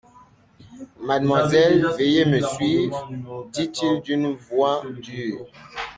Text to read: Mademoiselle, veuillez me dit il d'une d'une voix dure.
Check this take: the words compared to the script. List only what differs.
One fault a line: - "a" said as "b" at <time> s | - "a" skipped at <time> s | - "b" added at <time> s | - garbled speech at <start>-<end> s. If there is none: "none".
- "suivre" added at 2.4 s
- "d'une" skipped at 4.3 s